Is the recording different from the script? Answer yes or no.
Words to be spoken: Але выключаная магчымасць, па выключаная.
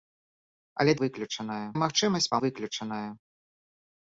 no